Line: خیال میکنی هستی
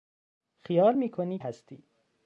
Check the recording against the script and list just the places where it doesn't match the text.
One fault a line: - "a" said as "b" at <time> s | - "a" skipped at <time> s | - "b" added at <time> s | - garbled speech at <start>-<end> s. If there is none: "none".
none